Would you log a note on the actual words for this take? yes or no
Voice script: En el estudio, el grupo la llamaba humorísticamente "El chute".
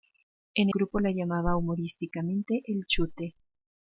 yes